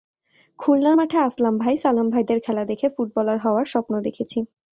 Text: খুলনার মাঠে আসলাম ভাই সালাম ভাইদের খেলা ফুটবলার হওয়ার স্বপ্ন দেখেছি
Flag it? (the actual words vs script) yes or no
yes